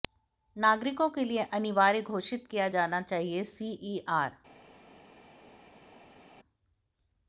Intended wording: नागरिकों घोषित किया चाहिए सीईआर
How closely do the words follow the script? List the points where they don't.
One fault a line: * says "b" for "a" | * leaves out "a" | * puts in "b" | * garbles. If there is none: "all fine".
* puts in "के लिए अनिवार्य"
* puts in "जाना"